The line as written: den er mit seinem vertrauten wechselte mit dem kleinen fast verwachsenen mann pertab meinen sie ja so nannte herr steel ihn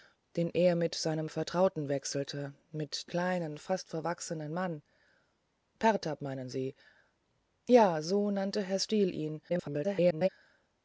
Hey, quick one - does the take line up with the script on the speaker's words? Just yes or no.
no